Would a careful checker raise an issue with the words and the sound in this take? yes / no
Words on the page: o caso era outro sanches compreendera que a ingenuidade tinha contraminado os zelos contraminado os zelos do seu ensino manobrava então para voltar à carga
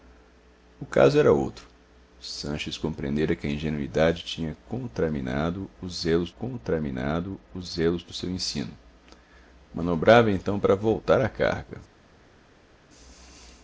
no